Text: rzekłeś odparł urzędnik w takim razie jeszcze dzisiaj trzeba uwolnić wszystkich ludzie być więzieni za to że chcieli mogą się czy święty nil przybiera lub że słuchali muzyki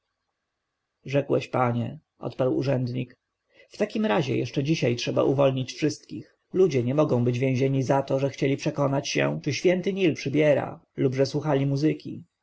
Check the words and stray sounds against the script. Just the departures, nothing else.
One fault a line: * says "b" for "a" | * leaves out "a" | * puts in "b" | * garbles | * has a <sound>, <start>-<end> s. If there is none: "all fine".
* puts in "panie"
* puts in "nie mogą"
* says "przekonać" for "mogą"